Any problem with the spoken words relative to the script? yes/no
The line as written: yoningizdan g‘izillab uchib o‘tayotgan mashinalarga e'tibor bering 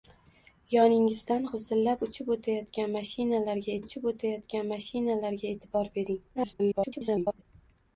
yes